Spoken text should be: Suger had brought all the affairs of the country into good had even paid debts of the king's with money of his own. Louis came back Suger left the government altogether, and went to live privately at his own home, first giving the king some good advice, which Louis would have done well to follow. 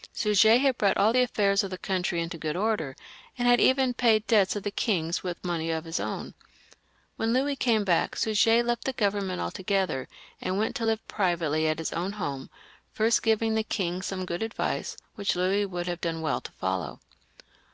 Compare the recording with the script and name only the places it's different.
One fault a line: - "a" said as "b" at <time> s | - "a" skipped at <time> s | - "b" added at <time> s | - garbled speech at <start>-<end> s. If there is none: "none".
- "order and" added at 2.5 s
- "When" added at 7.2 s